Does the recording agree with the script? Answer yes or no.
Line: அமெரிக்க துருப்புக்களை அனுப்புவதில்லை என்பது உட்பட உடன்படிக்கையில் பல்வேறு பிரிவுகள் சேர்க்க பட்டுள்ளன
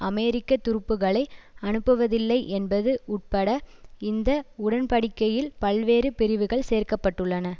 no